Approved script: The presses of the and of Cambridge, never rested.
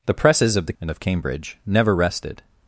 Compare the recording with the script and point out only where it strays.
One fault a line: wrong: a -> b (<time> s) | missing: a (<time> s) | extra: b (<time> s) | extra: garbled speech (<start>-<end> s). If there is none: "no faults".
no faults